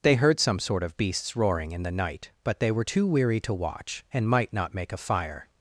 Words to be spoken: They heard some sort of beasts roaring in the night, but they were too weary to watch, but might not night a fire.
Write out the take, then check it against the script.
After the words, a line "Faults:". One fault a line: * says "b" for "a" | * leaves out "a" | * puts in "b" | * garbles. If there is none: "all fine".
They heard some sort of beasts roaring in the night, but they were too weary to watch, and might not make a fire.
Faults:
* says "and" for "but"
* says "make" for "night"